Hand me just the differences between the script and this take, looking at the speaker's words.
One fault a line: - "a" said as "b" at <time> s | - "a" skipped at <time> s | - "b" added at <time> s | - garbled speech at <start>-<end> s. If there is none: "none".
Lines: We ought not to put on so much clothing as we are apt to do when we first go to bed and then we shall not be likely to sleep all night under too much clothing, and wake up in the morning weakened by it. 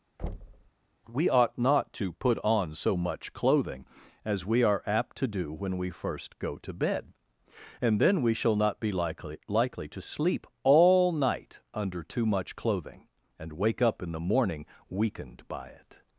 - "likely" added at 9.5 s